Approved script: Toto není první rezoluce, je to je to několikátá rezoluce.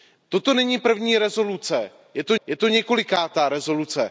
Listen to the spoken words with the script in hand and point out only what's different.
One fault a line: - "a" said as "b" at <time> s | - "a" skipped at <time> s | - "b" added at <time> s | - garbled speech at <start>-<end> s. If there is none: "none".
none